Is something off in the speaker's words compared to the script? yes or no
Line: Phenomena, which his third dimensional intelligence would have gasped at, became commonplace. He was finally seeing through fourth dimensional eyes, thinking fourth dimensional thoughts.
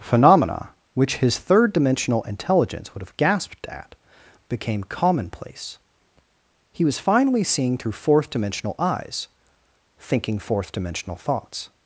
no